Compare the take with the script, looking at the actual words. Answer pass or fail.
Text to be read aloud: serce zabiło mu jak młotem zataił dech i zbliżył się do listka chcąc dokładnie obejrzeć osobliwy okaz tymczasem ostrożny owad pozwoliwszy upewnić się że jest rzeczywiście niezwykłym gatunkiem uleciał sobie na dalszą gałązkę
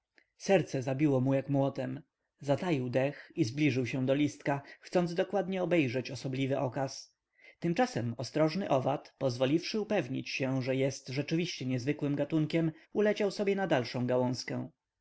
pass